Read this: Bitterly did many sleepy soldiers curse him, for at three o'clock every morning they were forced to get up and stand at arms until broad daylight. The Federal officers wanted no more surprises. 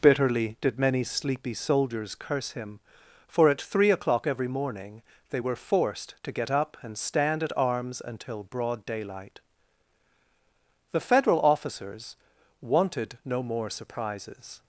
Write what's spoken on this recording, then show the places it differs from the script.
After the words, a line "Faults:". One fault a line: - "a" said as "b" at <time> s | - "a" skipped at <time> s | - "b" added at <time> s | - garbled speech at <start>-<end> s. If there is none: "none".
Bitterly did many sleepy soldiers curse him, for at three o'clock every morning they were forced to get up and stand at arms until broad daylight. The Federal officers wanted no more surprises.
Faults:
none